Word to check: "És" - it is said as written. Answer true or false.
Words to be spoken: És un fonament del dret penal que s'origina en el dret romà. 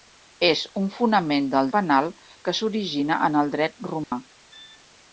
true